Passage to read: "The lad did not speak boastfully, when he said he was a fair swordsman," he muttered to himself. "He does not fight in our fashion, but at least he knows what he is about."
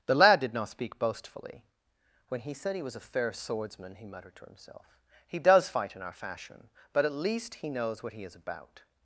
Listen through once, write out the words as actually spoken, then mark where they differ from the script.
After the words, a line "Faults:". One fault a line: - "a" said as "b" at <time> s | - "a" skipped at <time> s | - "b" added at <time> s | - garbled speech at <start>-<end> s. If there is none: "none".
"The lad did not speak boastfully, when he said he was a fair swordsman," he muttered to himself. "He does fight in our fashion, but at least he knows what he is about."
Faults:
- "not" skipped at 5.7 s